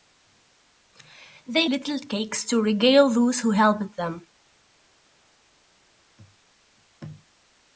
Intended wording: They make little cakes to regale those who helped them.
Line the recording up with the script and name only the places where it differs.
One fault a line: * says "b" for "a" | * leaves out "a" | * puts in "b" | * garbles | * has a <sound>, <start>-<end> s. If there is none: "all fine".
* leaves out "make"